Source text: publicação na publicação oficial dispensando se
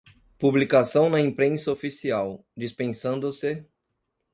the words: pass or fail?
fail